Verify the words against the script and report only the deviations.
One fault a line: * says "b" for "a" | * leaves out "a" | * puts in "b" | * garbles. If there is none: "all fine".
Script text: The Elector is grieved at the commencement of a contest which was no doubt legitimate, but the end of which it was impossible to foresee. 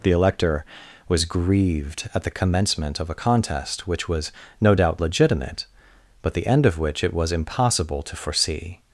* says "was" for "is"